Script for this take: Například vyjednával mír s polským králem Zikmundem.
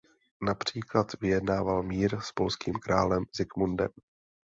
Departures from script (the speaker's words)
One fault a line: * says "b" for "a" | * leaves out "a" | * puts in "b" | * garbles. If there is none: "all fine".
all fine